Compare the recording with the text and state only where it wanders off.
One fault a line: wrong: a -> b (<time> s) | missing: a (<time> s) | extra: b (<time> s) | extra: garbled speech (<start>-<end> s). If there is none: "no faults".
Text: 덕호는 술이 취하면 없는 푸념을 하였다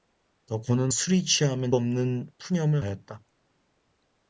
no faults